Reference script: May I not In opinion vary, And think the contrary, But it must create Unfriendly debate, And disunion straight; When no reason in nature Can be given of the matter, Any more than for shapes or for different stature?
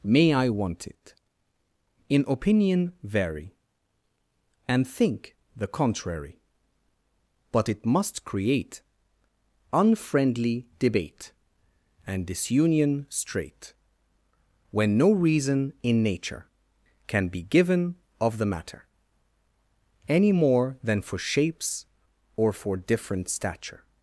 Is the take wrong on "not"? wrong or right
wrong